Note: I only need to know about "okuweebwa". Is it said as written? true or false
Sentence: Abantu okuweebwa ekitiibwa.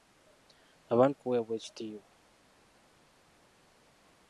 true